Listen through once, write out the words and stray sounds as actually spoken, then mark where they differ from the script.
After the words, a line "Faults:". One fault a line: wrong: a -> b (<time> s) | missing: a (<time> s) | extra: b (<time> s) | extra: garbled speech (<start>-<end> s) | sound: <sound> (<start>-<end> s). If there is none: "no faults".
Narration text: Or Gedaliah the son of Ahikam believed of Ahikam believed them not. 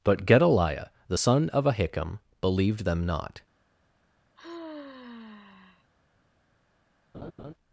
But Gedaliah the son of Ahikam believed them not.
Faults:
wrong: Or -> But (0.0 s)
missing: of Ahikam believed (2.9 s)
sound: sigh (4.4-5.9 s)
sound: laugh (7.1-7.5 s)